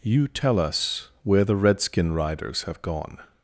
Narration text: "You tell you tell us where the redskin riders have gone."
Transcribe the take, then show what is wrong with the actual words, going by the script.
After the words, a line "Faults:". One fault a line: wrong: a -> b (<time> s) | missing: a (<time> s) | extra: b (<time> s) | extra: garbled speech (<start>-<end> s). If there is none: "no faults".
"You tell us where the redskin riders have gone."
Faults:
missing: you tell (0.6 s)